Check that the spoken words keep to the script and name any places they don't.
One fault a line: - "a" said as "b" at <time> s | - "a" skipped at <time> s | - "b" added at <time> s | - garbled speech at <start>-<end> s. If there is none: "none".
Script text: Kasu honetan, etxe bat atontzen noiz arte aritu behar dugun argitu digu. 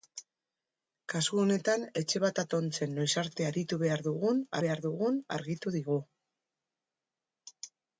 - "behar dugun" added at 4.7 s